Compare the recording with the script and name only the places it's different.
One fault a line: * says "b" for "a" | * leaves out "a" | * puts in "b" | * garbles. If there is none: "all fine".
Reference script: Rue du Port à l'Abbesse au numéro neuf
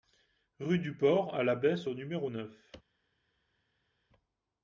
all fine